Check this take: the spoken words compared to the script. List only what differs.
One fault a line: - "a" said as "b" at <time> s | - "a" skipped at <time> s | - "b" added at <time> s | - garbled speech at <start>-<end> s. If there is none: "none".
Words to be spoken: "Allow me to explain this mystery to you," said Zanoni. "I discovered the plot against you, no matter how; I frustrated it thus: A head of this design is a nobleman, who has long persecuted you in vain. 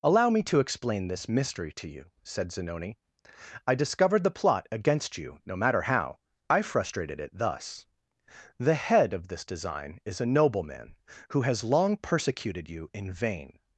- "A" said as "The" at 8.6 s